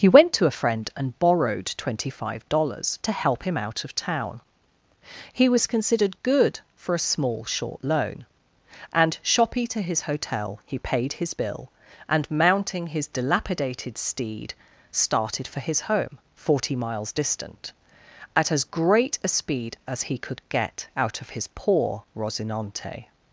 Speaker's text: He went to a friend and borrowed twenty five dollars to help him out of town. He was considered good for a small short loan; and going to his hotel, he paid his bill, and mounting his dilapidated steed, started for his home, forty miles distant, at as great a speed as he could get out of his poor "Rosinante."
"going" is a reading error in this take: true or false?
true